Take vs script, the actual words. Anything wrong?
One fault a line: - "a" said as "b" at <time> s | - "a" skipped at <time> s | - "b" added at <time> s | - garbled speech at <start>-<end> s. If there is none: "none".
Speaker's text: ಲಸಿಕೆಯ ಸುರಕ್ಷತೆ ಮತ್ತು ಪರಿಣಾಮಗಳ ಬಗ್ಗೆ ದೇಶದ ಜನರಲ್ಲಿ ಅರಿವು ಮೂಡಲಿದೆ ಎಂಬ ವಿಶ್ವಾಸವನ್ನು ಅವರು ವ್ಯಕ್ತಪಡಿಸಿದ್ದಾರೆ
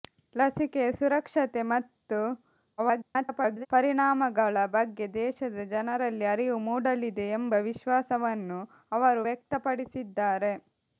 - garbled speech at 2.8-3.7 s